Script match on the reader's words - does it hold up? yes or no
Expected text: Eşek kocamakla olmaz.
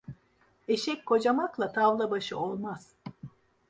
no